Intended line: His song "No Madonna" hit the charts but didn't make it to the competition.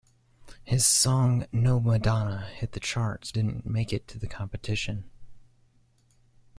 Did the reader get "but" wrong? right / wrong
wrong